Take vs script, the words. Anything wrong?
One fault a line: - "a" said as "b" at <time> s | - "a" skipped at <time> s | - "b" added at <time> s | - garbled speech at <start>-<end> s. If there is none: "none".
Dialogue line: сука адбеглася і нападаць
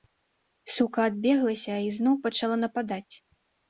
- "зноў пачала" added at 2.0 s